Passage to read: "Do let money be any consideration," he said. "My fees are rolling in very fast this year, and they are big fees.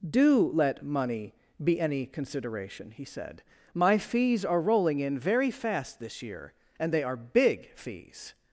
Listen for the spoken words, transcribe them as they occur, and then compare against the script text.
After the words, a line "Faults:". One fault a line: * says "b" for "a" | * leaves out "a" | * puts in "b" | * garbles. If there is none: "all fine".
"Do let money be any consideration," he said. "My fees are rolling in very fast this year, and they are big fees.
Faults:
all fine